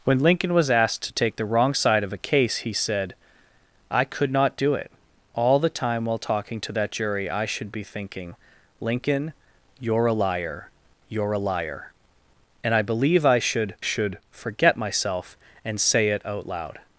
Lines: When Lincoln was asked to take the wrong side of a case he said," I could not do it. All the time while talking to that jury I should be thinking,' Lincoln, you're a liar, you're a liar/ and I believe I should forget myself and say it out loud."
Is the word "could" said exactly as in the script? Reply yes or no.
yes